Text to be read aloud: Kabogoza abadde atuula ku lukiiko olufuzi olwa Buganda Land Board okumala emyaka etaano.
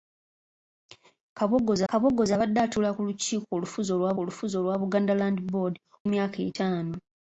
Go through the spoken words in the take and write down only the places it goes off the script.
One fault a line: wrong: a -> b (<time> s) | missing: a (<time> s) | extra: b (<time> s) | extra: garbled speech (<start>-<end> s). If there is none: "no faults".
extra: kabogoza (1.9 s)
extra: olufuzi olwa (4.2 s)
missing: okumala (5.7 s)